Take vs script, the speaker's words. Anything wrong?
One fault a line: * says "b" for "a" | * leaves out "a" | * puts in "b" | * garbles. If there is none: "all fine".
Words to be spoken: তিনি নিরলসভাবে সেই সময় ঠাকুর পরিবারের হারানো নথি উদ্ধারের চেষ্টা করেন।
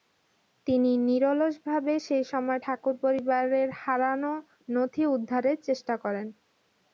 all fine